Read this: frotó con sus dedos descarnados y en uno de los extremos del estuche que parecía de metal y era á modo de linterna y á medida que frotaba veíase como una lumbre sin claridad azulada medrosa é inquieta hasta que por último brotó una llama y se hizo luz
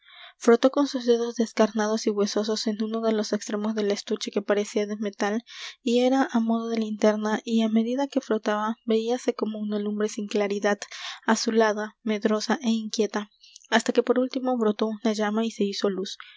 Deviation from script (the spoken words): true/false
true